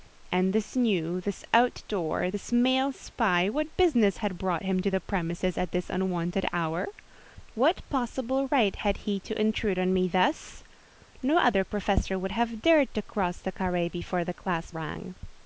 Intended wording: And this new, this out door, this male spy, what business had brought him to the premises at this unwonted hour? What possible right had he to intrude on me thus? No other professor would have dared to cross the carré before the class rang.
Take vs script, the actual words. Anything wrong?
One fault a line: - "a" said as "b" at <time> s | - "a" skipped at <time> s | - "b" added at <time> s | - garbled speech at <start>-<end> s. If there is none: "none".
none